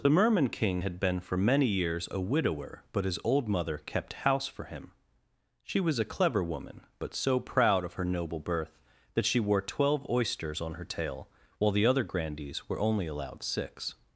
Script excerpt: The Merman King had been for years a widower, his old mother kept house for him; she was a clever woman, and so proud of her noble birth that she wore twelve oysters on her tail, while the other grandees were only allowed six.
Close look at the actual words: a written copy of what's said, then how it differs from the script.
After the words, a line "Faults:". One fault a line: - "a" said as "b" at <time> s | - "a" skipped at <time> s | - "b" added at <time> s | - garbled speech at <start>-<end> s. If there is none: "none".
The Merman King had been for many years a widower, but his old mother kept house for him; she was a clever woman, but so proud of her noble birth that she wore twelve oysters on her tail, while the other grandees were only allowed six.
Faults:
- "many" added at 1.4 s
- "but" added at 2.9 s
- "and" said as "but" at 7.0 s